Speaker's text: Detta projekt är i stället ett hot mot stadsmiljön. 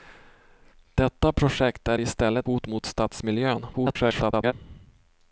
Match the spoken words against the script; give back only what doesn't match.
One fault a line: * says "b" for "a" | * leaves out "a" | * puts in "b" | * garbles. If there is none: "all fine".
* leaves out "ett"
* garbles